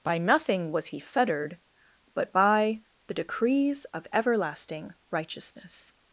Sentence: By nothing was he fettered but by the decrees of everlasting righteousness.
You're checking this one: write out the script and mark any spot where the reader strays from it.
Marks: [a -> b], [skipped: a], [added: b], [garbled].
By nothing was he fettered but by the decrees of everlasting righteousness.